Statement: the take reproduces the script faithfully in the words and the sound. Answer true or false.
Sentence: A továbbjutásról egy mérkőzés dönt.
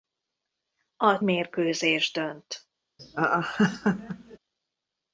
false